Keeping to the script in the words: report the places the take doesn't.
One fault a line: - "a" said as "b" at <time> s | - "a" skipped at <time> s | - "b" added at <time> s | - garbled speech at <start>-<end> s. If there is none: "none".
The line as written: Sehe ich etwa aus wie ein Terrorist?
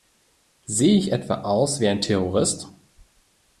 none